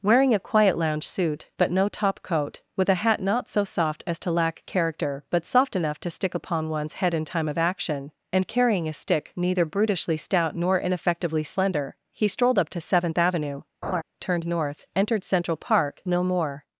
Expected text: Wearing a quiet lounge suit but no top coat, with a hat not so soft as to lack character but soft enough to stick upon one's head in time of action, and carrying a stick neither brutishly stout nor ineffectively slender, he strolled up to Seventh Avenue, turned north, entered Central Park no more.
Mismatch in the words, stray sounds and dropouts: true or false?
true